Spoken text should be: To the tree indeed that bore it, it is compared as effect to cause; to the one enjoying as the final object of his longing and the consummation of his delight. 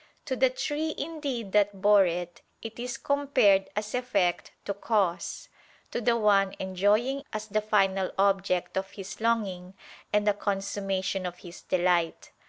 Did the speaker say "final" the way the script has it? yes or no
yes